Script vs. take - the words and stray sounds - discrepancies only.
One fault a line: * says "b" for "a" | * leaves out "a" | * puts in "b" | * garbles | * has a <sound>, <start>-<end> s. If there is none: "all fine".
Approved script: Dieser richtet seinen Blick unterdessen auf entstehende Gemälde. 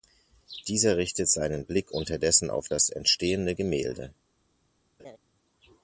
* puts in "das"
* has a laugh, 5.0-5.2 s